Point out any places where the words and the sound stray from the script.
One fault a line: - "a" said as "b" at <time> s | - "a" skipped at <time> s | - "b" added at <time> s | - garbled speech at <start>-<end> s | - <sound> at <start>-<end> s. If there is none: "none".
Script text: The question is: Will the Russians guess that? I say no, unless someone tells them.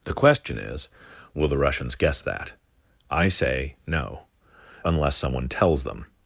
none